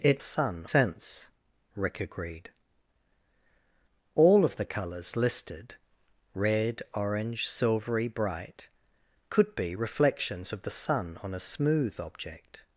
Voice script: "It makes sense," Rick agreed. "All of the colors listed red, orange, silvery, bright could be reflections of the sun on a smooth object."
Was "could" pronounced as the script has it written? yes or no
yes